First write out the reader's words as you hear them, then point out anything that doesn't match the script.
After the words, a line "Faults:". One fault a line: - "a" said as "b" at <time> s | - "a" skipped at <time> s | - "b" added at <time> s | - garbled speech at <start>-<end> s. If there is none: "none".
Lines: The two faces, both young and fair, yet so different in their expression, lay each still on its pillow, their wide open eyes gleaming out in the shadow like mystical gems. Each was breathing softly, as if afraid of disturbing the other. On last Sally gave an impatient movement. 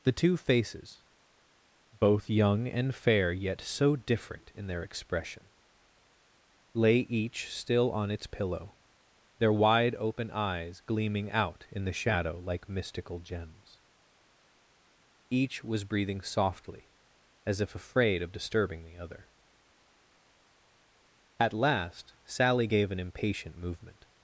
The two faces, both young and fair, yet so different in their expression, lay each still on its pillow, their wide open eyes gleaming out in the shadow like mystical gems. Each was breathing softly, as if afraid of disturbing the other. At last Sally gave an impatient movement.
Faults:
- "On" said as "At" at 21.4 s